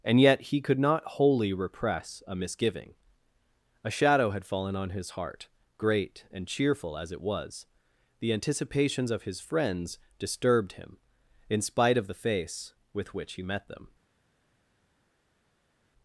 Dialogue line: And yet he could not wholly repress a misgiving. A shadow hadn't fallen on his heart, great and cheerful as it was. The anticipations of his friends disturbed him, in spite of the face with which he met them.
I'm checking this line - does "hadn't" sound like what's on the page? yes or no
no